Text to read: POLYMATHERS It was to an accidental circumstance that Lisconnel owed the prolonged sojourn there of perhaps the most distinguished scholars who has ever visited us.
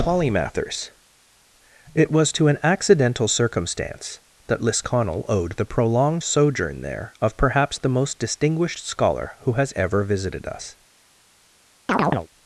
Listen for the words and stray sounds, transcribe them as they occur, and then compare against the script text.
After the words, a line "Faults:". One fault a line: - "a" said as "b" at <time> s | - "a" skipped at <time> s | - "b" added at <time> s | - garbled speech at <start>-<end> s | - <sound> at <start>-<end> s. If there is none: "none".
POLYMATHERS It was to an accidental circumstance that Lisconnel owed the prolonged sojourn there of perhaps the most distinguished scholar who has ever visited us.
Faults:
- "scholars" said as "scholar" at 8.9 s
- chirp at 11.9-12.3 s